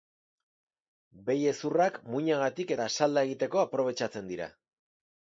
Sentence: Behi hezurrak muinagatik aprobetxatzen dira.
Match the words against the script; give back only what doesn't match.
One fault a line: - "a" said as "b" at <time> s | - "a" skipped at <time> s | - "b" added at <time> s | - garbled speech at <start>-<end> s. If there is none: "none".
- "eta salda egiteko" added at 2.7 s